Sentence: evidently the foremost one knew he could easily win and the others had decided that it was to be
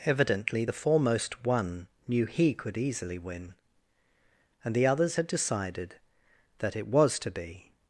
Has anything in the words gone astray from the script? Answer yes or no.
no